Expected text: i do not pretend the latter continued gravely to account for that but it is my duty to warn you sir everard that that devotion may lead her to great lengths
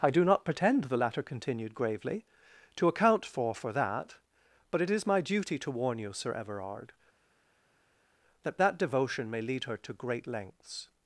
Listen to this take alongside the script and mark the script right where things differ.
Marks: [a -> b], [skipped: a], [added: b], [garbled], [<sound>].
i do not pretend the latter continued gravely to account for [added: for] that but it is my duty to warn you sir everard that that devotion may lead her to great lengths